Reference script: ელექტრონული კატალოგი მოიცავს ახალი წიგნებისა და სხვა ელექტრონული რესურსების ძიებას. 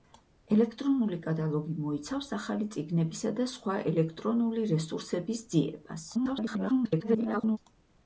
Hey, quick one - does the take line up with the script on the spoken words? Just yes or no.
no